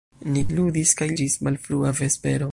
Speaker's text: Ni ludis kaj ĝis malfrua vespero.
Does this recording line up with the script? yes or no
yes